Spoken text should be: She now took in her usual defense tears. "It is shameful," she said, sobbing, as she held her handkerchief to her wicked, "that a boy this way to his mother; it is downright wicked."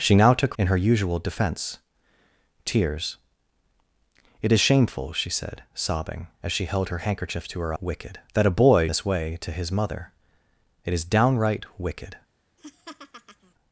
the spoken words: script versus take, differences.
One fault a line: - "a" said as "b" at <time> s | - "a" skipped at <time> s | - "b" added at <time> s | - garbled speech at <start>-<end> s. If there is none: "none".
none